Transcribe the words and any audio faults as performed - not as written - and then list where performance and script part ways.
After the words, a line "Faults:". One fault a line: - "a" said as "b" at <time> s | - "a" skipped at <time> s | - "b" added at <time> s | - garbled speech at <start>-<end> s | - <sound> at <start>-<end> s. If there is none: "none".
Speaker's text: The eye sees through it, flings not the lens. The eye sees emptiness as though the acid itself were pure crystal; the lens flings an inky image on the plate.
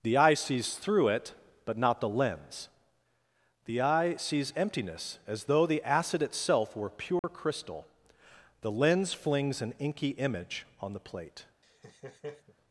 The eye sees through it, but not the lens. The eye sees emptiness as though the acid itself were pure crystal; the lens flings an inky image on the plate.
Faults:
- "flings" said as "but" at 1.6 s
- dropout at 7.2-7.2 s
- laugh at 11.6-12.6 s